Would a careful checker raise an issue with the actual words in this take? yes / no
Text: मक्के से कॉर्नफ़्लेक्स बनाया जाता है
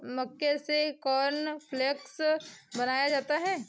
no